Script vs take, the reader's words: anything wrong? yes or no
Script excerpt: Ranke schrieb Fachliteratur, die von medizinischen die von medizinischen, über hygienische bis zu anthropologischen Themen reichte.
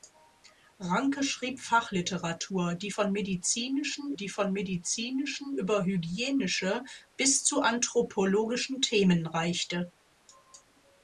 no